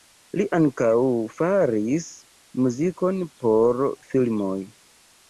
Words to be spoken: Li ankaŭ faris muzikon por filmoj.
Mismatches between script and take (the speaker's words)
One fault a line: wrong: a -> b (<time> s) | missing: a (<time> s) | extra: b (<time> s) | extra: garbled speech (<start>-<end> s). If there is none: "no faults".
no faults